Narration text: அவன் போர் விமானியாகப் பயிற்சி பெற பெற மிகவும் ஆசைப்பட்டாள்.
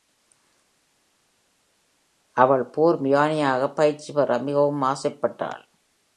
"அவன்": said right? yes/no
no